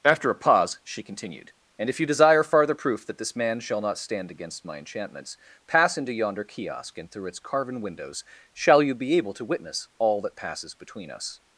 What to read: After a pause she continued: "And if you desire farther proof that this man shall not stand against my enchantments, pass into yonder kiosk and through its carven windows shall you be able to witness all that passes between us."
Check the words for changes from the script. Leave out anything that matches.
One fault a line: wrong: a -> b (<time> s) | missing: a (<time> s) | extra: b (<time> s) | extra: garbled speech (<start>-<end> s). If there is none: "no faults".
no faults